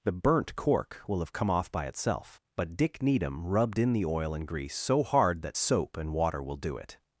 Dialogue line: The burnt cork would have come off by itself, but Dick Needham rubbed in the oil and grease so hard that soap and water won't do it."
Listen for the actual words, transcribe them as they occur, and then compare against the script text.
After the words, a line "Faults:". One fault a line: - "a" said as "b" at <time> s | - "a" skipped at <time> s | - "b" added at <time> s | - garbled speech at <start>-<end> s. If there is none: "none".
The burnt cork will have come off by itself, but Dick Needham rubbed in the oil and grease so hard that soap and water will do it."
Faults:
- "would" said as "will" at 1.1 s
- "won't" said as "will" at 6.4 s